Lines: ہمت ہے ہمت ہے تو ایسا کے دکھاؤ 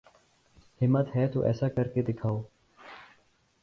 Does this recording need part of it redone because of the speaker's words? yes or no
yes